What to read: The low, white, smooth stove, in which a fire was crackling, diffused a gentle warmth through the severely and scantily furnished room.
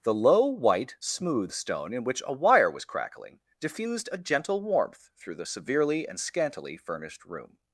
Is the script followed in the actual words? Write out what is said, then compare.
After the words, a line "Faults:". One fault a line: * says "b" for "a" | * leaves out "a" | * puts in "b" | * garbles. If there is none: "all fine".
The low, white, smooth stone, in which a wire was crackling, diffused a gentle warmth through the severely and scantily furnished room.
Faults:
* says "stone" for "stove"
* says "wire" for "fire"